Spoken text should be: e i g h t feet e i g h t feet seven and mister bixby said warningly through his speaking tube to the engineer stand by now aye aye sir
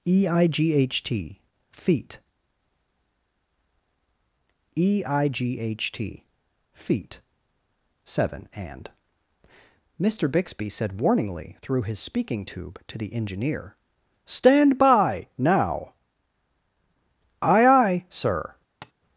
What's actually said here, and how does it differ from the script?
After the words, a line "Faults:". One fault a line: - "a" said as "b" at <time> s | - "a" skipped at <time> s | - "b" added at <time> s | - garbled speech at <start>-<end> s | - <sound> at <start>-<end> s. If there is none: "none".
e i g h t feet e i g h t feet seven and mister bixby said warningly through his speaking tube to the engineer stand by now aye aye sir
Faults:
- tap at 18.8-18.9 s